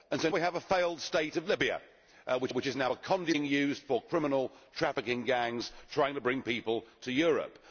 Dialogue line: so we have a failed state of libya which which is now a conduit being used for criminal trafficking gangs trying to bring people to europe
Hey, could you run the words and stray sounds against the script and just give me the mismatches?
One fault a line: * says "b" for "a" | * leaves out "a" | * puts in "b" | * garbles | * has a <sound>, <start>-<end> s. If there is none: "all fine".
all fine